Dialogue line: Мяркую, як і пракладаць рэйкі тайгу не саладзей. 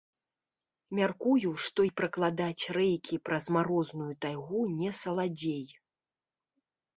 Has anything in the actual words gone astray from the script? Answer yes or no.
yes